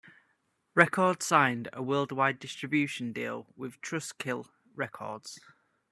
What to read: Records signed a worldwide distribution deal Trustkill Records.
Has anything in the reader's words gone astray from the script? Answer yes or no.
yes